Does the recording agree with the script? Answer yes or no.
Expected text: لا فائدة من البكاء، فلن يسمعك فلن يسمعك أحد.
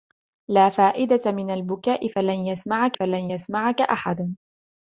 yes